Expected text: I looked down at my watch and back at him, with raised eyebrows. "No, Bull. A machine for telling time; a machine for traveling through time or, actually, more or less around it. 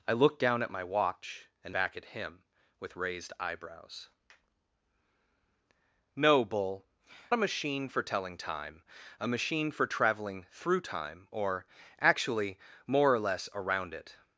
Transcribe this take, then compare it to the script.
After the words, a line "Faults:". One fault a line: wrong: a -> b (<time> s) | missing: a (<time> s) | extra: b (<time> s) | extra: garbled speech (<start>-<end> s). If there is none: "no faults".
I looked down at my watch and back at him, with raised eyebrows. "No, Bull. A machine for telling time; a machine for traveling through time or, actually, more or less around it.
Faults:
no faults